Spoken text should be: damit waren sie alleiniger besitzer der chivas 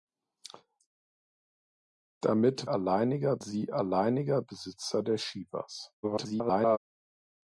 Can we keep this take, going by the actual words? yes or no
no